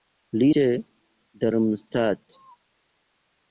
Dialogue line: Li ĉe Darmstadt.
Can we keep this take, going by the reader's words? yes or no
yes